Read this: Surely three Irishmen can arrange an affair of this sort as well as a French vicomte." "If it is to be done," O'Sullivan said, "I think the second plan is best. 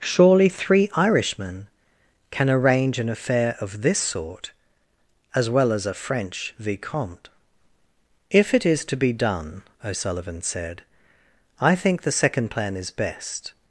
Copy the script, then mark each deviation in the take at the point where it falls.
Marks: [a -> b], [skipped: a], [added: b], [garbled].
Surely three Irishmen can arrange an affair of this sort as well as a French vicomte." "If it is to be done," O'Sullivan said, "I think the second plan is best.